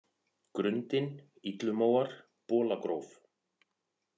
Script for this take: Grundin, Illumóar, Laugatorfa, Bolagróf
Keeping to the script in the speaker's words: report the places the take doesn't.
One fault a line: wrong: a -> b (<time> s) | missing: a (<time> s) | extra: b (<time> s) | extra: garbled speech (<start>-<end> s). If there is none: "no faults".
missing: Laugatorfa (2.1 s)